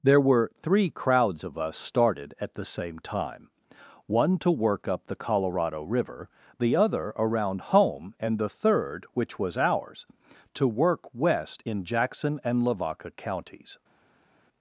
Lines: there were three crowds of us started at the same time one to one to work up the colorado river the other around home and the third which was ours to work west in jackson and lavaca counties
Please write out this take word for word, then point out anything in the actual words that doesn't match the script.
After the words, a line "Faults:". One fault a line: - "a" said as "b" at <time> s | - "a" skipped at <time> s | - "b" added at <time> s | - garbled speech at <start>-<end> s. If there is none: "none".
there were three crowds of us started at the same time one to work up the colorado river the other around home and the third which was ours to work west in jackson and lavaca counties
Faults:
- "one to" skipped at 4.5 s